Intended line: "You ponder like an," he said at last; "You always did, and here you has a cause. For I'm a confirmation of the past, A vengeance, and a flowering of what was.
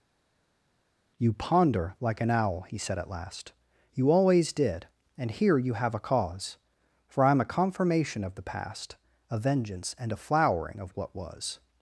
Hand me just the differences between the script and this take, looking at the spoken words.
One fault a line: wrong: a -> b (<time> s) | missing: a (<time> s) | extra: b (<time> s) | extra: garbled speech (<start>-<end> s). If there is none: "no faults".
extra: owl (2.3 s)
wrong: has -> have (5.7 s)